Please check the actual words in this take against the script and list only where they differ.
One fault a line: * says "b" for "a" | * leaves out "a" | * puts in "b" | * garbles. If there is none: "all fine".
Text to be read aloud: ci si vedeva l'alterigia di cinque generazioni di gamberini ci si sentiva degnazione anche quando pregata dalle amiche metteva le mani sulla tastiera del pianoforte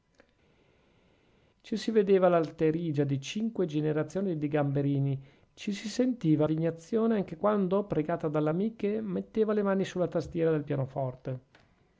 all fine